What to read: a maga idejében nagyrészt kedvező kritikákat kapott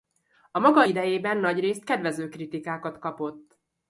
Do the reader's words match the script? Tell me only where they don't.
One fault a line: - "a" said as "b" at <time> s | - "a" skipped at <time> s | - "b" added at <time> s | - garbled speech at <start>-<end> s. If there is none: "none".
none